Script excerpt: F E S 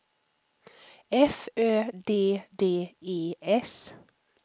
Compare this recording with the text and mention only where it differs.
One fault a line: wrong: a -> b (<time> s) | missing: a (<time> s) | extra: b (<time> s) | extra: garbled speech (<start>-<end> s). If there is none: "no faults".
extra: Ö D D (1.6 s)